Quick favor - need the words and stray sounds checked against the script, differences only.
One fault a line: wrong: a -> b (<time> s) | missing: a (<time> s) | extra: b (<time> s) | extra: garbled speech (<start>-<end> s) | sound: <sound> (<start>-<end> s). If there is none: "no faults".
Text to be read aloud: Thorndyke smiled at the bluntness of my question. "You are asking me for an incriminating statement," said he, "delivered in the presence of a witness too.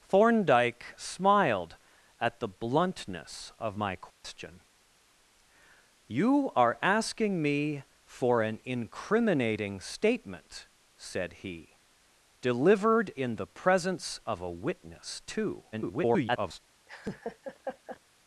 sound: dropout (4.1-4.2 s)
extra: garbled speech (15.7-16.6 s)
sound: laugh (16.9-18.0 s)